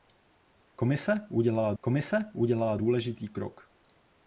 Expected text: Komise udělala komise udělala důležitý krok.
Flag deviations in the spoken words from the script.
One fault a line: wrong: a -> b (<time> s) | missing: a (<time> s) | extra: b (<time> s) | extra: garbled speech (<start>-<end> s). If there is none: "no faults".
no faults